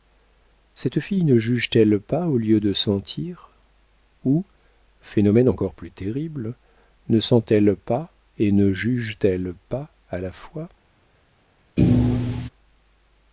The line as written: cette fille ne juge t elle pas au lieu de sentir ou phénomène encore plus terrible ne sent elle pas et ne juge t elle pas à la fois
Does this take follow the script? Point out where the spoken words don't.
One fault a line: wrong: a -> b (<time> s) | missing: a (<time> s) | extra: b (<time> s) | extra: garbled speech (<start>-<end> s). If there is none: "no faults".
no faults